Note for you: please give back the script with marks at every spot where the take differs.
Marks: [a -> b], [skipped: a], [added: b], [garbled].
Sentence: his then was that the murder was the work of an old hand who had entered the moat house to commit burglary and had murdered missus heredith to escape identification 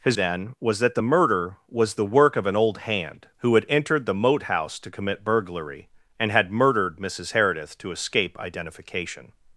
his then was that the murder was the work of an old hand who had entered the moat house to commit burglary and had murdered missus heredith to escape identification